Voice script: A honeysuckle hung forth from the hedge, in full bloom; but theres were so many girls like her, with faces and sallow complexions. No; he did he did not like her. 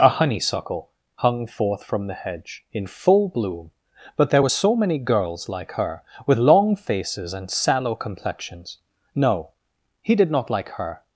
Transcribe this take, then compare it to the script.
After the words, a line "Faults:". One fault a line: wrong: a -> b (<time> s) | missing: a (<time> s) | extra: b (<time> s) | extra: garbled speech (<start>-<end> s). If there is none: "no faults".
A honeysuckle hung forth from the hedge, in full bloom; but there were so many girls like her, with long faces and sallow complexions. No; he did not like her.
Faults:
wrong: theres -> there (4.3 s)
extra: long (6.4 s)
missing: he did (10.3 s)